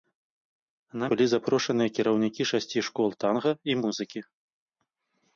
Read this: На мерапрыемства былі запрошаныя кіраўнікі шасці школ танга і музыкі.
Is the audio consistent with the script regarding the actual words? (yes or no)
no